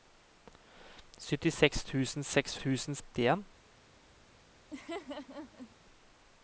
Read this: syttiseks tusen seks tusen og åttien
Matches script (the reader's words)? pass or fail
pass